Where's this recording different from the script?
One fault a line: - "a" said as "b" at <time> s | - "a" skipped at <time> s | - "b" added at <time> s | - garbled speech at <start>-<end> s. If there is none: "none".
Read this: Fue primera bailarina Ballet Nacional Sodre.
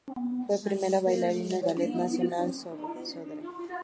none